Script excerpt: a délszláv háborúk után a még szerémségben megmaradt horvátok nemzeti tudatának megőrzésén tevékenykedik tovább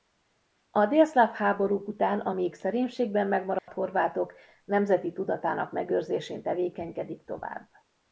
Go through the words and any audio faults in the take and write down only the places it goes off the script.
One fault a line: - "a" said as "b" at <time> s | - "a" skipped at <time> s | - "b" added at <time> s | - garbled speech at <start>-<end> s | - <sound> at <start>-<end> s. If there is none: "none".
- dropout at 3.6-3.7 s